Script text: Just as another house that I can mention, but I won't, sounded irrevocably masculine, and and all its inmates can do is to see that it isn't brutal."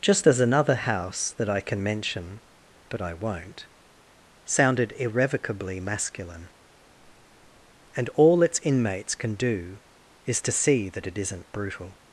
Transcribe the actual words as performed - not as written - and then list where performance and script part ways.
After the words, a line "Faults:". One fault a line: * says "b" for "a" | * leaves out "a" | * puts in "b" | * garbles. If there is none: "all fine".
Just as another house that I can mention, but I won't, sounded irrevocably masculine, and all its inmates can do is to see that it isn't brutal."
Faults:
* leaves out "and"